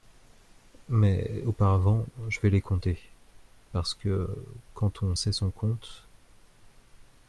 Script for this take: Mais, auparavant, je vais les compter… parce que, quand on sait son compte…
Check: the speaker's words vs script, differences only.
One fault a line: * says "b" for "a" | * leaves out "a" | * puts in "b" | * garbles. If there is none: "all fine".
all fine